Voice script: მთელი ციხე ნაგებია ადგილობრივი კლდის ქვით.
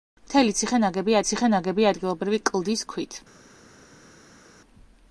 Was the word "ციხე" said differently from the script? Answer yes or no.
no